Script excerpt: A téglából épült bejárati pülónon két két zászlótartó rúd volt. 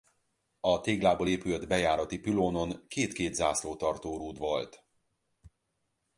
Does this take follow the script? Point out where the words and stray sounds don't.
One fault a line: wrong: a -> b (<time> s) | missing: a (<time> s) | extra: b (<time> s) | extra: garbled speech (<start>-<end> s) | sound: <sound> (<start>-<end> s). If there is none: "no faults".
no faults